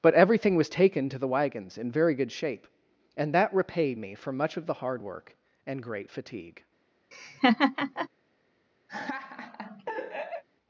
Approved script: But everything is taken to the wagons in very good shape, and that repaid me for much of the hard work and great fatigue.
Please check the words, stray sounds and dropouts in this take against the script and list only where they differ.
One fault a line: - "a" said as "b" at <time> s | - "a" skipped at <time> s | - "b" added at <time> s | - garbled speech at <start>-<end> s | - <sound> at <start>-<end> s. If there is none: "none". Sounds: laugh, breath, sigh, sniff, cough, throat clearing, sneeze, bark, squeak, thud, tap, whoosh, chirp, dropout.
- "is" said as "was" at 0.6 s
- laugh at 7.1-8.1 s
- laugh at 8.9-10.4 s